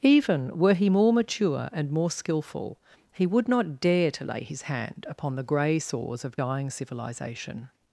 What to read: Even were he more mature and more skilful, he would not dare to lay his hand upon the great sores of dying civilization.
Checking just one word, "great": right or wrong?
wrong